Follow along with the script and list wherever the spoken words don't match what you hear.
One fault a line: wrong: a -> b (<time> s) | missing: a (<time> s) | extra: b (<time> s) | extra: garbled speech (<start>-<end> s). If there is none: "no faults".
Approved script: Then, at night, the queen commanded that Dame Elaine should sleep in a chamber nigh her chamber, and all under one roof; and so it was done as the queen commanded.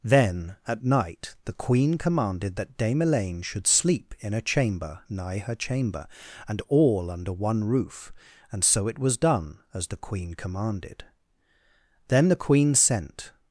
extra: Then the queen sent (12.1 s)